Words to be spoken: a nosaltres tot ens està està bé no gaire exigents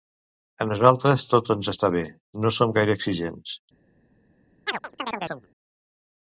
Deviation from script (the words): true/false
true